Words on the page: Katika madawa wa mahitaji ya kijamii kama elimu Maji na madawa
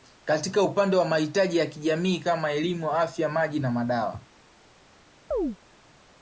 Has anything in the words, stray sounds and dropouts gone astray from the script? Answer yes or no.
yes